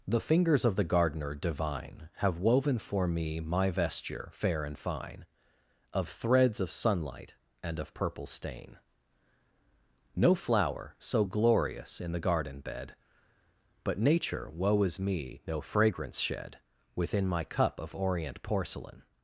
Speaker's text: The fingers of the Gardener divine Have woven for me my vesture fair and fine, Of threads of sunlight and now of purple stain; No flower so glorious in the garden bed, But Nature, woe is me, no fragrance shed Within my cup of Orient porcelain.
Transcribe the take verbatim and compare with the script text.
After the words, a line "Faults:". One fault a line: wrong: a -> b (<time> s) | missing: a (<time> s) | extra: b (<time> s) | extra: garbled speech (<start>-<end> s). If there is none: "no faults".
The fingers of the Gardener divine Have woven for me my vesture fair and fine, Of threads of sunlight and of purple stain; No flower so glorious in the garden bed, But Nature, woe is me, no fragrance shed Within my cup of Orient porcelain.
Faults:
missing: now (7.8 s)